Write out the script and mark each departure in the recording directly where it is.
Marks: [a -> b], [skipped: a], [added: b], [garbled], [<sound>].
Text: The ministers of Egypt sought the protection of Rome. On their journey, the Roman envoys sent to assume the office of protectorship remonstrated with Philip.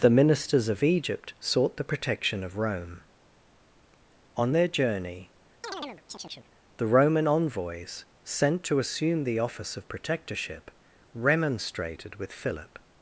The ministers of Egypt sought the protection of Rome. On their journey, [chirp] the Roman envoys sent to assume the office of protectorship remonstrated with Philip.